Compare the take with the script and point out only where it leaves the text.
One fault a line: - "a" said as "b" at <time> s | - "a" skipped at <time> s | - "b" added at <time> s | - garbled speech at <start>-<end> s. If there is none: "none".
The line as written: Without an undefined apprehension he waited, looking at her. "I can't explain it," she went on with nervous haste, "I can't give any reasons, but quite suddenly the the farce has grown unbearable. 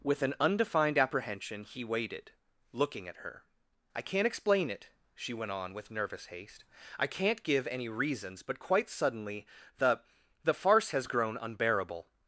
- "Without" said as "With" at 0.0 s